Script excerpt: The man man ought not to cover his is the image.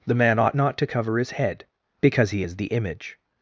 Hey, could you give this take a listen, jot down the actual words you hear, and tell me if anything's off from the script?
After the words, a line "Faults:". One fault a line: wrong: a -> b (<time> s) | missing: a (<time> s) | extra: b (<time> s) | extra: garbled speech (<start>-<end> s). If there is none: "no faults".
The man ought not to cover his head, because he is the image.
Faults:
missing: man (0.4 s)
extra: head because he (1.3 s)